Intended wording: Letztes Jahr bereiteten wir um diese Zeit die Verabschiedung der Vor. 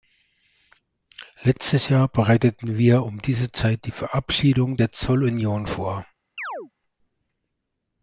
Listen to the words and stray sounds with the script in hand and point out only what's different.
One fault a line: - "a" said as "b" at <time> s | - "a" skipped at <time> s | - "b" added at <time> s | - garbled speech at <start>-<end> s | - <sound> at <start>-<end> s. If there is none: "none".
- "Zollunion" added at 4.9 s
- chirp at 6.4-6.7 s